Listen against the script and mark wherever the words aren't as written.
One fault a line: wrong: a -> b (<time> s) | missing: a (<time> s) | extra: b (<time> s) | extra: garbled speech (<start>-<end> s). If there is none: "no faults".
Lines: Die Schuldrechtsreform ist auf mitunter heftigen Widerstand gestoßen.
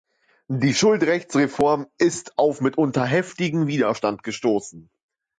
no faults